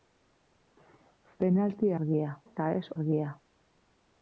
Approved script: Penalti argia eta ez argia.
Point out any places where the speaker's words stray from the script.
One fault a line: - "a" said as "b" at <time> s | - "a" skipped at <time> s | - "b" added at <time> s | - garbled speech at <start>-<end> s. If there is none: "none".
none